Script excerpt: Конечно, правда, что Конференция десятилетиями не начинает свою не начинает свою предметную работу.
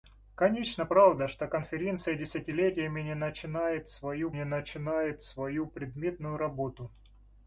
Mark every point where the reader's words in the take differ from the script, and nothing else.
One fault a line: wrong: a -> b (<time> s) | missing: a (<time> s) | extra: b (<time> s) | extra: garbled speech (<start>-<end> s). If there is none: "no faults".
no faults